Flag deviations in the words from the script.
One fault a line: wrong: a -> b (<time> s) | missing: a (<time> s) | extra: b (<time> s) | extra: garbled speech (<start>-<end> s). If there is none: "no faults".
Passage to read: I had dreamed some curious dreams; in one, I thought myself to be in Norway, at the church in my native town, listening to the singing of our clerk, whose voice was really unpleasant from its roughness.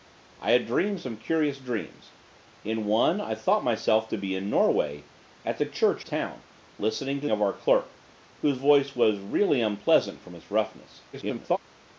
missing: in my native (6.0 s)
missing: the singing (7.3 s)
extra: garbled speech (11.1-11.6 s)